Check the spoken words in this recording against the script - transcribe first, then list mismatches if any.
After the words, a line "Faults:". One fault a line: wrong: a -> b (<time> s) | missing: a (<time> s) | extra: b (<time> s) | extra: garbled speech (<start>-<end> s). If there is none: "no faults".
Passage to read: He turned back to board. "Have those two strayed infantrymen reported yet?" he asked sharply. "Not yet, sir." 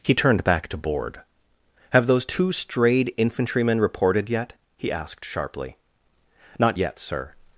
He turned back to board. "Have those two strayed infantrymen reported yet?" he asked sharply. "Not yet, sir."
Faults:
no faults